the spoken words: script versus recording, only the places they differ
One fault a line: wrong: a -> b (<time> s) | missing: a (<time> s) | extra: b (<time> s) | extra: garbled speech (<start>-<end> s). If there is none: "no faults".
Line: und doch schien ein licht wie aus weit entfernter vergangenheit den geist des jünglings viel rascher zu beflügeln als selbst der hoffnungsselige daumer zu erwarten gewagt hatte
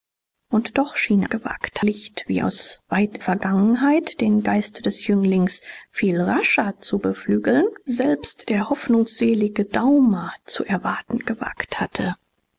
wrong: ein -> gewagt (1.2 s)
missing: entfernter (3.2 s)
missing: als (7.7 s)